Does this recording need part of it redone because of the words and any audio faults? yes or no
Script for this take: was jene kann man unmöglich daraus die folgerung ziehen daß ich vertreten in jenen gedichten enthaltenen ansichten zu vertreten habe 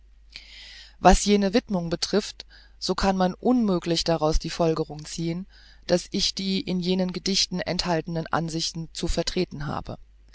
yes